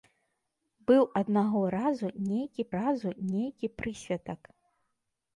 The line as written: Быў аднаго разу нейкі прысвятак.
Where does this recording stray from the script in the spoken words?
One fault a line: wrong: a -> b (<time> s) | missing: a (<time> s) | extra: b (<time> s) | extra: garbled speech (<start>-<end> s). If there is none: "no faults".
extra: разу нейкі (2.8 s)